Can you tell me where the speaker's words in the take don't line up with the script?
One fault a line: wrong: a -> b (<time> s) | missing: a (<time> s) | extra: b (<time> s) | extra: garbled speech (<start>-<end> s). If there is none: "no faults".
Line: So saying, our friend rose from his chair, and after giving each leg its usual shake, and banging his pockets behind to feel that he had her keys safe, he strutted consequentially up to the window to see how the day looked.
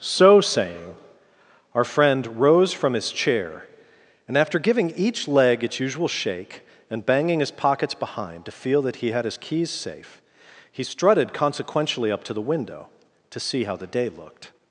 wrong: her -> his (9.2 s)